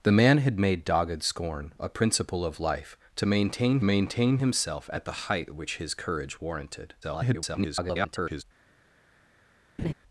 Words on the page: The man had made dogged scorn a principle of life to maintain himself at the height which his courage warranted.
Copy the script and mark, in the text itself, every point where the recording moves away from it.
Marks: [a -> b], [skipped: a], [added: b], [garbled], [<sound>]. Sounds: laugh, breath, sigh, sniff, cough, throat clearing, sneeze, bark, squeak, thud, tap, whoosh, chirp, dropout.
The man had made dogged scorn a principle of life to maintain [added: maintain] himself at the height which his courage warranted. [garbled] [laugh]